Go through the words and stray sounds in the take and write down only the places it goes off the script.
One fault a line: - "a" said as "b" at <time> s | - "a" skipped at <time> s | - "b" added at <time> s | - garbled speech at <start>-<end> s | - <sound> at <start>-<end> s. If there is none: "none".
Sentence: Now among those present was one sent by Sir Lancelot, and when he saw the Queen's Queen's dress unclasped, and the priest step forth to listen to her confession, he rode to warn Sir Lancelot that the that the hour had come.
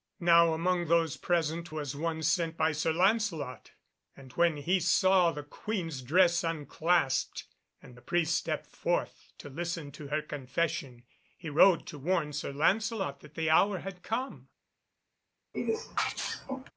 - "Queen's" skipped at 6.0 s
- "that the" skipped at 13.5 s
- sneeze at 15.5-16.7 s